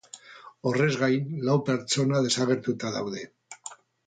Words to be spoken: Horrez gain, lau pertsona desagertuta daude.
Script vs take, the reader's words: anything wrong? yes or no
no